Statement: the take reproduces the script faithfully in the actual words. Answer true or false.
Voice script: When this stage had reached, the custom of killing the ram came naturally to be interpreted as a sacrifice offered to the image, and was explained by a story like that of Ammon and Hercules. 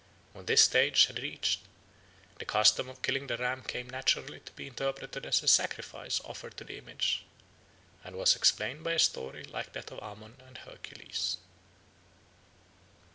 true